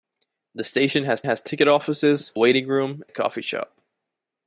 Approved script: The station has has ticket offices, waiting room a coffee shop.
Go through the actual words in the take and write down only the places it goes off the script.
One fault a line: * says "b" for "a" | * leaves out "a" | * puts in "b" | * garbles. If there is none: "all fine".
all fine